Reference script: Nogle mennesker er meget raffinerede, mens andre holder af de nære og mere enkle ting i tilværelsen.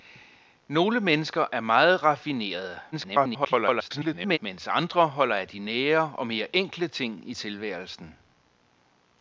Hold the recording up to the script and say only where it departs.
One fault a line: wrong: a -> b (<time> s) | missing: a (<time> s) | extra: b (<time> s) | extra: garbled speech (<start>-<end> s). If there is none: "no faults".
extra: garbled speech (2.9-4.4 s)